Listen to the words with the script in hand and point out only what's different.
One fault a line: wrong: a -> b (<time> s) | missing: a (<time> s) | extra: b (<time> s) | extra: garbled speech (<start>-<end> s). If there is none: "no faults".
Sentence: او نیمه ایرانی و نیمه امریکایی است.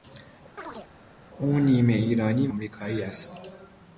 missing: نیمه (2.5 s)